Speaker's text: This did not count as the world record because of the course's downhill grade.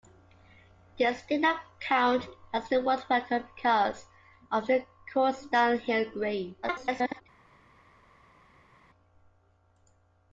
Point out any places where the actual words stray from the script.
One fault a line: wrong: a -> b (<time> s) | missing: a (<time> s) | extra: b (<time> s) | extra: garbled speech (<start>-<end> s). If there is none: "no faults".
extra: garbled speech (6.6-7.2 s)